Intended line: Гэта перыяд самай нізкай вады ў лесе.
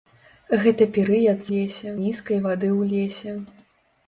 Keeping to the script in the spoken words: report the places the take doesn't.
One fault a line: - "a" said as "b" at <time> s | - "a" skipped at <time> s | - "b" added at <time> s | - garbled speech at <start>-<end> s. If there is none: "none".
- "самай" said as "лесе" at 1.5 s